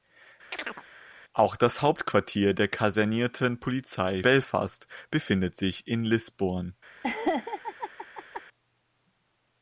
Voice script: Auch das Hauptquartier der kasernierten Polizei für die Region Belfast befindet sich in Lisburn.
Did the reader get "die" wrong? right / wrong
wrong